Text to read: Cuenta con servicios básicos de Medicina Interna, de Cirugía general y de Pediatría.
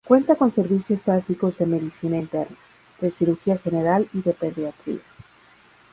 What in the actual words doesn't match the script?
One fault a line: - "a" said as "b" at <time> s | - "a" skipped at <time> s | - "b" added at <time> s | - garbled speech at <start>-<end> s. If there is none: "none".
none